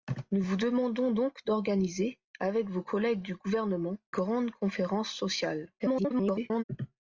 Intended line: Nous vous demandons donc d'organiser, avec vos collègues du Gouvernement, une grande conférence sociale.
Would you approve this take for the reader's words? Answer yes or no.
no